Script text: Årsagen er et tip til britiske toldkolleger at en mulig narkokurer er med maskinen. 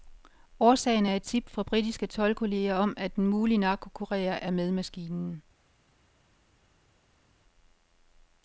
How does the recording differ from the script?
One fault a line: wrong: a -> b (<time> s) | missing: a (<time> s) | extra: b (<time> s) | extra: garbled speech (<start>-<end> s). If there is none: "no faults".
wrong: til -> fra (1.5 s)
extra: om (2.7 s)